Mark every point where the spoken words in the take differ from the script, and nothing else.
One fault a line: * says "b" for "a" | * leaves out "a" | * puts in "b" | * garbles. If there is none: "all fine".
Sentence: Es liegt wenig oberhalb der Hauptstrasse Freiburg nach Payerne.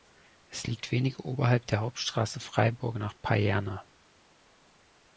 all fine